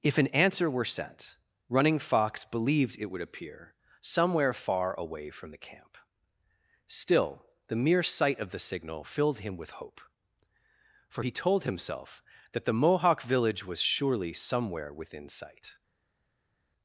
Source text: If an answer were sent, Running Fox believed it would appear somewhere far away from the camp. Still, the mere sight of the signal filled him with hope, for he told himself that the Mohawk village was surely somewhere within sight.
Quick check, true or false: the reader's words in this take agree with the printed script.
true